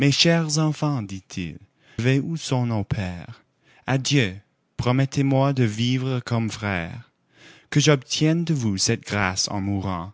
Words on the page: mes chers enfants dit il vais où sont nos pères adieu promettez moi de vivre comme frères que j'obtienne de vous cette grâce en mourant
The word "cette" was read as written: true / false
true